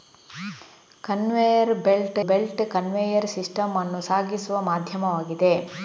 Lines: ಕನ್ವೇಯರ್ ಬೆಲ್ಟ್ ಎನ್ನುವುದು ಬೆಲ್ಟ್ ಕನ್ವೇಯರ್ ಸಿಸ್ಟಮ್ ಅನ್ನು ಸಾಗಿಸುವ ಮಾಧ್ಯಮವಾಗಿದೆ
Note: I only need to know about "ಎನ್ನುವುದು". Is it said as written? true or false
false